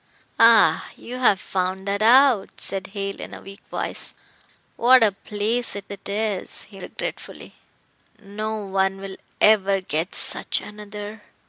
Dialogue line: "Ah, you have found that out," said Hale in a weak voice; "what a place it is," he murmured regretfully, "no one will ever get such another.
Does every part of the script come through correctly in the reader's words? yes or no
no